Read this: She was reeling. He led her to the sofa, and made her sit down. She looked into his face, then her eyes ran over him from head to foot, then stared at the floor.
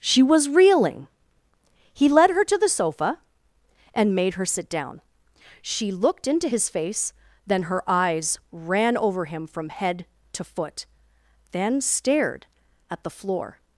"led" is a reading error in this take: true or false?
false